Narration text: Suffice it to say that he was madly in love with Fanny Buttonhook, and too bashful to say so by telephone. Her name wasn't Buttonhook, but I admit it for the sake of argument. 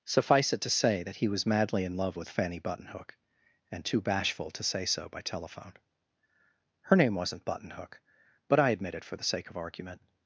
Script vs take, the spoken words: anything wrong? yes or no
no